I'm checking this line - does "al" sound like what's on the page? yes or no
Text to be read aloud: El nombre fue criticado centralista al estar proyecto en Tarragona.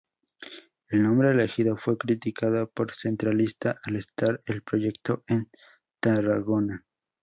yes